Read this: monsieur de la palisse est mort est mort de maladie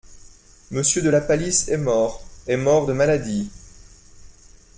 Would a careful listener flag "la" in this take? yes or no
no